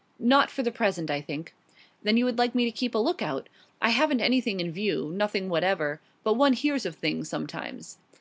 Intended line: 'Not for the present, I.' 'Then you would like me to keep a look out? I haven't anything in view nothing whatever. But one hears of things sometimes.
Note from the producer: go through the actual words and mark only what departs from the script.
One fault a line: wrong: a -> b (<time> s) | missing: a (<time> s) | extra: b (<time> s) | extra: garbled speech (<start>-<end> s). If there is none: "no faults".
extra: think (1.2 s)